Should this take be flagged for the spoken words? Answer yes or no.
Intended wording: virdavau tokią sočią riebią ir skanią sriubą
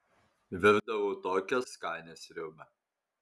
yes